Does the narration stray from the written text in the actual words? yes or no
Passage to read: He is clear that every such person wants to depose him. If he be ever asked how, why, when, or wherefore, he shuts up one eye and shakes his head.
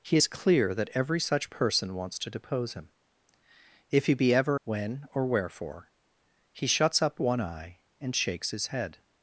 yes